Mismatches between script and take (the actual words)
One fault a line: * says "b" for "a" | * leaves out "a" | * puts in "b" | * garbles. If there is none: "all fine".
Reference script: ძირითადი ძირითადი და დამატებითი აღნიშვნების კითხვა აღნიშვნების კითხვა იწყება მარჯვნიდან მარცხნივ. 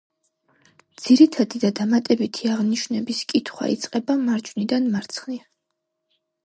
* leaves out "ძირითადი"
* leaves out "აღნიშვნების კითხვა"